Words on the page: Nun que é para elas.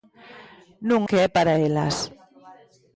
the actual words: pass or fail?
pass